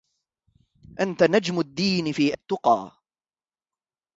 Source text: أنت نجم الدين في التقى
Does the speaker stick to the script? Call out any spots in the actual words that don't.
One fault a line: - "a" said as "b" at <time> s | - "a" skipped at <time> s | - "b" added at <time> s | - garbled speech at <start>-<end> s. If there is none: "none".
none